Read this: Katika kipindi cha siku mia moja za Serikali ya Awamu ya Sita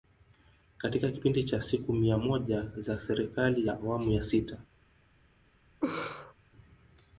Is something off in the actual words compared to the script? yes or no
no